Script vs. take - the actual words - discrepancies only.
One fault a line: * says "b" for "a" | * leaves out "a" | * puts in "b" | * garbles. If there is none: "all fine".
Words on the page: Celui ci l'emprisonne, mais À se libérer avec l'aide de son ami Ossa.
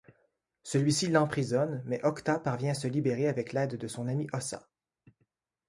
* puts in "Octa parvient"